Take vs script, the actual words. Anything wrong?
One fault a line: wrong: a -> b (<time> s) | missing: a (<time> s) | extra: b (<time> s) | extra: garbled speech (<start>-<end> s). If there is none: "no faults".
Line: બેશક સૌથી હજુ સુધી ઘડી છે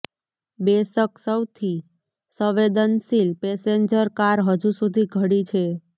extra: સંવેદનશીલ પેસેન્જર કાર (2.4 s)